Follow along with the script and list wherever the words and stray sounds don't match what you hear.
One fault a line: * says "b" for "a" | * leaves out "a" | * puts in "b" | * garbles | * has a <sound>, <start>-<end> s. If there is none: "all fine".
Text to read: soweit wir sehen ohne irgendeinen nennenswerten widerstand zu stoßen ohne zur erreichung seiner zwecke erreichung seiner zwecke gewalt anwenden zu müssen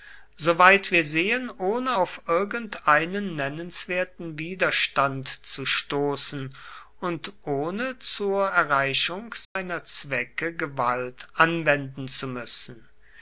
* puts in "auf"
* puts in "und"
* has a dropout, 9.4-9.6 s
* leaves out "erreichung seiner zwecke"